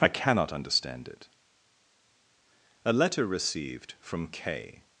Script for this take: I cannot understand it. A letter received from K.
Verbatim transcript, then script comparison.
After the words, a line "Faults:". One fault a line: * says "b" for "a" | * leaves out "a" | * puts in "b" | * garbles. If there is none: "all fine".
I cannot understand it. A letter received from K.
Faults:
all fine